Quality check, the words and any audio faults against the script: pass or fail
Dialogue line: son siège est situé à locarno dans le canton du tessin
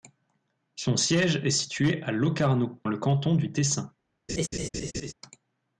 fail